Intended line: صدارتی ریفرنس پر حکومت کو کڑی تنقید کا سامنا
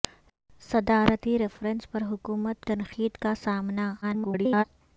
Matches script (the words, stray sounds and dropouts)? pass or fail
fail